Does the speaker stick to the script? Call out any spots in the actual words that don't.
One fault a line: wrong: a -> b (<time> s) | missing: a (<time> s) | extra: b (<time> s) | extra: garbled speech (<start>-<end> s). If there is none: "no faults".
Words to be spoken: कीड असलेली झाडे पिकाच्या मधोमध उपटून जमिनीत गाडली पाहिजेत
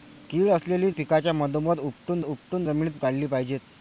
missing: झाडे (0.9 s)
extra: उपटून (2.2 s)